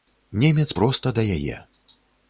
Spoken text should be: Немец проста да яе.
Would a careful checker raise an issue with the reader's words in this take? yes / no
no